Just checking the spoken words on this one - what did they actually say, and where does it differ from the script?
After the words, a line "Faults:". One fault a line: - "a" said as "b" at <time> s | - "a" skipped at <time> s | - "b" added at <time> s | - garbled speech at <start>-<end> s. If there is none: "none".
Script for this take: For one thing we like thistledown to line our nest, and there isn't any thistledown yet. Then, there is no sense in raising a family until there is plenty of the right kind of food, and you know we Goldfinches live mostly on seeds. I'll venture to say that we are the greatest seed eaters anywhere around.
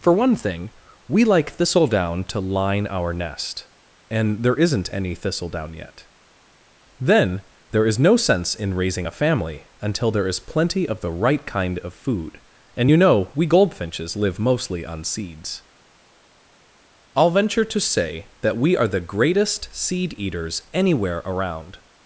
For one thing we like thistledown to line our nest, and there isn't any thistledown yet. Then, there is no sense in raising a family until there is plenty of the right kind of food, and you know we Goldfinches live mostly on seeds. I'll venture to say that we are the greatest seed eaters anywhere around.
Faults:
none